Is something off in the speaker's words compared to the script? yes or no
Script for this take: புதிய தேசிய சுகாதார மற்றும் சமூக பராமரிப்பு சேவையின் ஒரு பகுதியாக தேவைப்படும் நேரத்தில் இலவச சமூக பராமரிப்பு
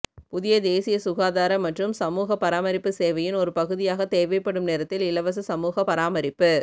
no